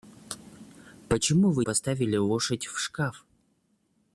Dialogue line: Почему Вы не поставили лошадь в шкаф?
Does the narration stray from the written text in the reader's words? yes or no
yes